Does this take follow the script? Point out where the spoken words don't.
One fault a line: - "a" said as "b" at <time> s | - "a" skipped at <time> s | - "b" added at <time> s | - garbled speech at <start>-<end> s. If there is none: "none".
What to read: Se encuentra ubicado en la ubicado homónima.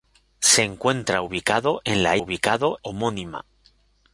none